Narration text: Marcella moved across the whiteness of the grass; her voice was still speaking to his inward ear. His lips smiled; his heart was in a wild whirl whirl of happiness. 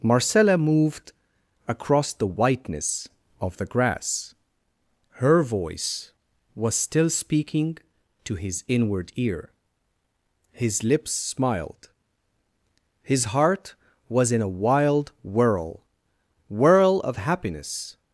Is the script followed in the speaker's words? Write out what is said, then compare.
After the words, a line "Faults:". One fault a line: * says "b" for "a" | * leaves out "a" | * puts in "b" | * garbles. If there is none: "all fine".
Marcella moved across the whiteness of the grass; her voice was still speaking to his inward ear. His lips smiled; his heart was in a wild whirl whirl of happiness.
Faults:
all fine